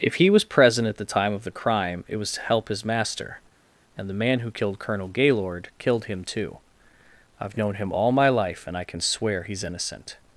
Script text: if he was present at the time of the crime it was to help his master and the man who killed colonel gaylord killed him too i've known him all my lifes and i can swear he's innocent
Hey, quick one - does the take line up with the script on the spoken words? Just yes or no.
no